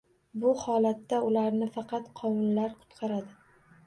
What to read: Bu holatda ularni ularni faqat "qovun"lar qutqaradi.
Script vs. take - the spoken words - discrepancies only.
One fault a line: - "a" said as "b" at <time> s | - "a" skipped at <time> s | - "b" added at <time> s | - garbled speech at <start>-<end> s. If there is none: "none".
- "ularni" skipped at 1.7 s